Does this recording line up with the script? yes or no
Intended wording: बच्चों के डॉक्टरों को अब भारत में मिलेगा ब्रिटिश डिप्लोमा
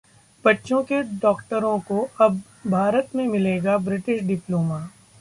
yes